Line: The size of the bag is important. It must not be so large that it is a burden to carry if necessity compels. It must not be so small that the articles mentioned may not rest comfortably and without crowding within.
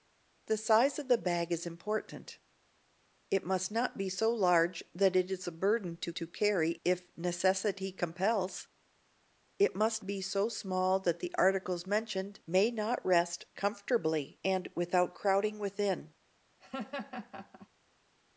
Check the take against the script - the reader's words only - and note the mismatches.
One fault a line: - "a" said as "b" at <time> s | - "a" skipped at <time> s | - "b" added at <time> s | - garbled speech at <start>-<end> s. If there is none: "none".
- "to" added at 6.1 s
- "not" skipped at 10.0 s